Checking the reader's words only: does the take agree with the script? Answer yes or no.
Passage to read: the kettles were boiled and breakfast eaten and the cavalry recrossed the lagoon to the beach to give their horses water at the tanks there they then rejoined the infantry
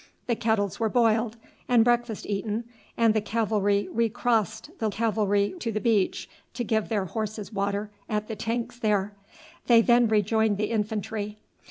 no